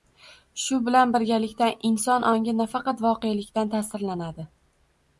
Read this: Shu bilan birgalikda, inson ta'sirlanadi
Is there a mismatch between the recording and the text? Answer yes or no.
yes